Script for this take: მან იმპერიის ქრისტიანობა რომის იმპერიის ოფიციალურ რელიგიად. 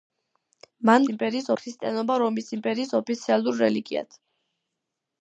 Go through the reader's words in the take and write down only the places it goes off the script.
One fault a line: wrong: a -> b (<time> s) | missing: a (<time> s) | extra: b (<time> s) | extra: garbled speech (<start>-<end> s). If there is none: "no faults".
no faults